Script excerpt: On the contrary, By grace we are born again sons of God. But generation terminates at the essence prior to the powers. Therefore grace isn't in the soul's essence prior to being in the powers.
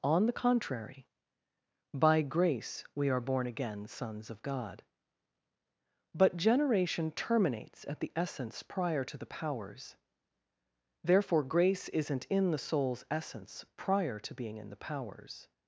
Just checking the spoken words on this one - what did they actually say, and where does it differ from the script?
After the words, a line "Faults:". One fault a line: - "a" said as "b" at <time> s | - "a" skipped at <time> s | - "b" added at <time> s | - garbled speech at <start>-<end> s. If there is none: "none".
On the contrary, By grace we are born again sons of God. But generation terminates at the essence prior to the powers. Therefore grace isn't in the soul's essence prior to being in the powers.
Faults:
none